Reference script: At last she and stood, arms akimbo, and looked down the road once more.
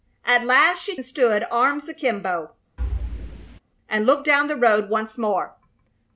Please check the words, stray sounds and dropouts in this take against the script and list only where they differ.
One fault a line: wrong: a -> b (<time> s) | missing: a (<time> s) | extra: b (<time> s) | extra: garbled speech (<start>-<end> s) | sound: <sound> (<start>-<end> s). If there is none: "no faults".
sound: thud (2.8-3.6 s)